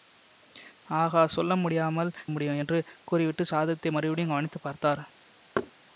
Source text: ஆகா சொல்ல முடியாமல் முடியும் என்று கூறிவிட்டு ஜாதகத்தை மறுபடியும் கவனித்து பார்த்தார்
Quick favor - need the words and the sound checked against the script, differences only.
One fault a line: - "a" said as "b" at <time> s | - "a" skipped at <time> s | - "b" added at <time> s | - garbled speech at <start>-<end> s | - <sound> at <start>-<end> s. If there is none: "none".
- thud at 5.6-5.7 s